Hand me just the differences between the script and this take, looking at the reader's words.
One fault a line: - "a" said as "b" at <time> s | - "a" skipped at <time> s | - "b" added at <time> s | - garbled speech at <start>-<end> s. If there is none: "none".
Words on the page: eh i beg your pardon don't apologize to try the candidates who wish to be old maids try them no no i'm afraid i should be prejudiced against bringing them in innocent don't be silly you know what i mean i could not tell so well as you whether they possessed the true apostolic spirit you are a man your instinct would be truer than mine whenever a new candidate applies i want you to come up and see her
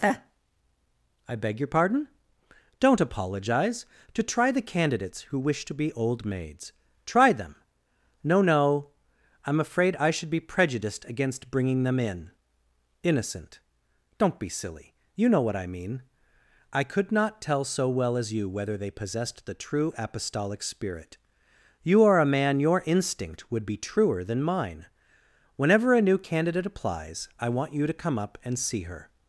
none